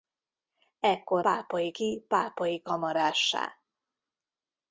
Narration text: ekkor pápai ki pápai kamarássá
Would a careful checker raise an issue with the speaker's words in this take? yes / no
no